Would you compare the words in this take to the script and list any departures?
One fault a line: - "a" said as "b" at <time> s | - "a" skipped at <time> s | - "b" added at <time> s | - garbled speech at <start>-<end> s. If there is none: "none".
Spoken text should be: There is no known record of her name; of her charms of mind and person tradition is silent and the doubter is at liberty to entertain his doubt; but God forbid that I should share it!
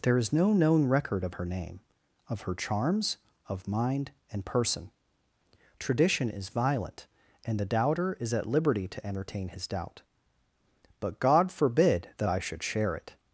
- "silent" said as "violent" at 6.5 s